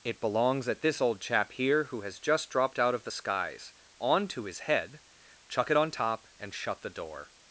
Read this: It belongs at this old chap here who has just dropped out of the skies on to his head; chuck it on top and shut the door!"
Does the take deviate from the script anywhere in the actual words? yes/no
no